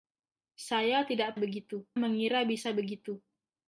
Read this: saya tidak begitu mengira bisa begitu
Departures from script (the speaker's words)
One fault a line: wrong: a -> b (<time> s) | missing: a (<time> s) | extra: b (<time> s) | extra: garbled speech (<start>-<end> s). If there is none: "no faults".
no faults